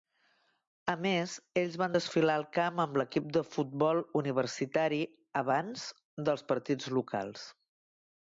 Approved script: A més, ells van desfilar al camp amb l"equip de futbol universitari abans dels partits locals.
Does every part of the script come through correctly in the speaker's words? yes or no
yes